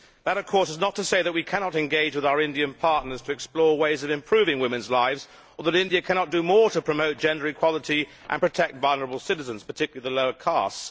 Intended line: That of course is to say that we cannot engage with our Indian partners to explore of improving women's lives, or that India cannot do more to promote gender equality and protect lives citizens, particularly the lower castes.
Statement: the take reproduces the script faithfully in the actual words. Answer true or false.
false